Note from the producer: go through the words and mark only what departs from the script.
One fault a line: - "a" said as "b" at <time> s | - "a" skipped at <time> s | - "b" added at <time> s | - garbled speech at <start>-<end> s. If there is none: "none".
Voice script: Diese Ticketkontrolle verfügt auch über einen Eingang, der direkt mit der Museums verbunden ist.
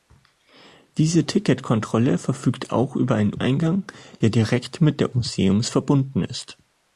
none